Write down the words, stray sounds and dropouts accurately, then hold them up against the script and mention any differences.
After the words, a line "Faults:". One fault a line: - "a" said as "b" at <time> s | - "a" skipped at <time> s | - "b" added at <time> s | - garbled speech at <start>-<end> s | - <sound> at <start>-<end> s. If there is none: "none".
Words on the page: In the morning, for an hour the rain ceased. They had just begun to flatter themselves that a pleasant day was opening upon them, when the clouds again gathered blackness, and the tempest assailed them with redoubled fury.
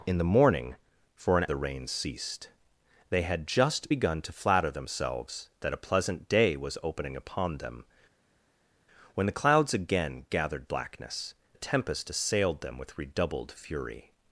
In the morning, for an the rain ceased. They had just begun to flatter themselves that a pleasant day was opening upon them, when the clouds again gathered blackness, the tempest assailed them with redoubled fury.
Faults:
- "hour" skipped at 1.4 s
- "and" skipped at 11.3 s